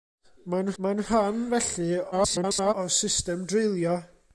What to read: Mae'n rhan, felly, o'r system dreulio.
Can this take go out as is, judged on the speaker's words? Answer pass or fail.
fail